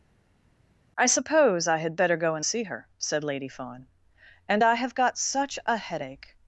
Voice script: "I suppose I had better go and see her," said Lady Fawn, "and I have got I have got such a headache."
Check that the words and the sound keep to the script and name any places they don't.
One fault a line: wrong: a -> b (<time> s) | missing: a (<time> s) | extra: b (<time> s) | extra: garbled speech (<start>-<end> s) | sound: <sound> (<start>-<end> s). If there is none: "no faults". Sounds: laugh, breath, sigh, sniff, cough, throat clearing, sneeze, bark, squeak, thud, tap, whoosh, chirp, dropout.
missing: I have got (5.2 s)